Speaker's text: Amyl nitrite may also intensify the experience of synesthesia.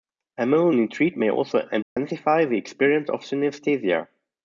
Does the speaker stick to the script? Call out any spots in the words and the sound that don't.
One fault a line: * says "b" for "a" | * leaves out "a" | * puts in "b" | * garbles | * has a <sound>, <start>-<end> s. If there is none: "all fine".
* has a dropout, 1.8-2.0 s